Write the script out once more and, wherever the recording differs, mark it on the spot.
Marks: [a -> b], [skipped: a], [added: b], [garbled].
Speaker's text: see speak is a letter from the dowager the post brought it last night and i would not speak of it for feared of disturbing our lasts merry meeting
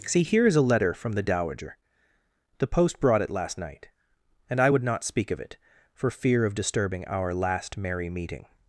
see [speak -> here] is a letter from the dowager the post brought it last night and i would not speak of it for [feared -> fear] of disturbing our [lasts -> last] merry meeting